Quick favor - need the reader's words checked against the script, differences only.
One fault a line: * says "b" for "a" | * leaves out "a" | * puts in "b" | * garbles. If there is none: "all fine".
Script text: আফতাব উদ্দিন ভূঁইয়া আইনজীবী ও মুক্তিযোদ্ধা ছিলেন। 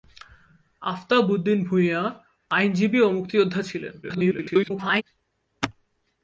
* garbles